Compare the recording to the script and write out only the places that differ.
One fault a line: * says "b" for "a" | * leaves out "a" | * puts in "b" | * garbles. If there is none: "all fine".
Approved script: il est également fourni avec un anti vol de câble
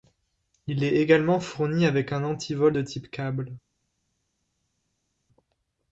* puts in "type"